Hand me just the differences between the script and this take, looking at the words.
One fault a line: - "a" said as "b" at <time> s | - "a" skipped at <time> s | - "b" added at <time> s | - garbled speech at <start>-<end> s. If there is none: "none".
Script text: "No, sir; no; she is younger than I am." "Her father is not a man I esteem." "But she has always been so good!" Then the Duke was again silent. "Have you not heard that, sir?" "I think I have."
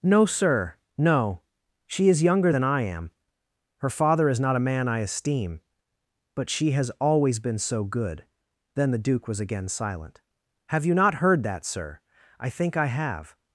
none